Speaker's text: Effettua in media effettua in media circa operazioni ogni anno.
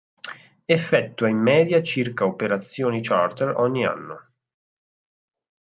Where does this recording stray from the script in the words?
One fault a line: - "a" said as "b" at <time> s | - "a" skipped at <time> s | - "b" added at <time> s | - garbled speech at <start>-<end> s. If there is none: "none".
- "effettua in media" skipped at 1.8 s
- "charter" added at 3.0 s